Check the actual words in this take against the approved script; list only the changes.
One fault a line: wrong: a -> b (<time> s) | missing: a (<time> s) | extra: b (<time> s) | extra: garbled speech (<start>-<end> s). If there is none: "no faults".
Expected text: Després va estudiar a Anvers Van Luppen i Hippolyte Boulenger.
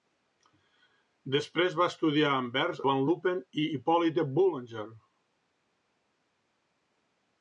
no faults